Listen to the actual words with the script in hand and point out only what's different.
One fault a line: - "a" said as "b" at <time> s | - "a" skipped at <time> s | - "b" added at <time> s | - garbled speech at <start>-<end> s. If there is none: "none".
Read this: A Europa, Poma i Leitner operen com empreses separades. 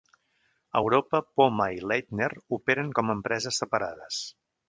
none